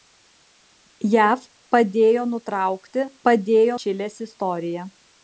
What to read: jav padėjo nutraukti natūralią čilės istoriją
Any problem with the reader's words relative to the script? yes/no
yes